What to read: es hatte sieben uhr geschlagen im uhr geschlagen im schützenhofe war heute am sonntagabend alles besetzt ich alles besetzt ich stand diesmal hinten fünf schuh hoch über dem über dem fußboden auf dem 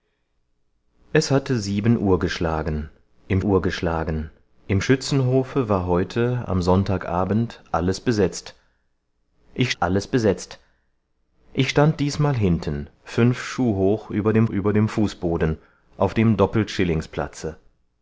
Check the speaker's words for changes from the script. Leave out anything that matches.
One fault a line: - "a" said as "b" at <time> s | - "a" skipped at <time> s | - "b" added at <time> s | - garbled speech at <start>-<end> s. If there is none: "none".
none